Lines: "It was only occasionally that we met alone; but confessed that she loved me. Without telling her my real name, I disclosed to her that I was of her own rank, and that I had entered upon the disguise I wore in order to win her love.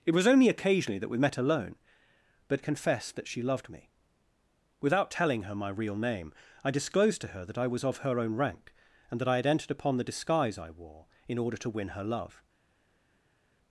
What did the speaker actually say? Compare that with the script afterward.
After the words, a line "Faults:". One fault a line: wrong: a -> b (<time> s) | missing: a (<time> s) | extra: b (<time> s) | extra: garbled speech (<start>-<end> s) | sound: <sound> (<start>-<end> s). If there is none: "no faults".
"It was only occasionally that we met alone; but confessed that she loved me. Without telling her my real name, I disclosed to her that I was of her own rank, and that I had entered upon the disguise I wore in order to win her love.
Faults:
no faults